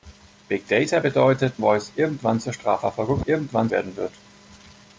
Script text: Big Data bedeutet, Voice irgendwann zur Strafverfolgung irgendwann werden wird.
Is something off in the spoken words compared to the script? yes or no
no